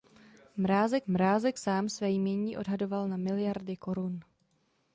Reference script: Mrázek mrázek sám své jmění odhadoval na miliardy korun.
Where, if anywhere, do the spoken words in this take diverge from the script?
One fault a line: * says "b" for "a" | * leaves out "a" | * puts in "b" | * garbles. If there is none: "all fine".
all fine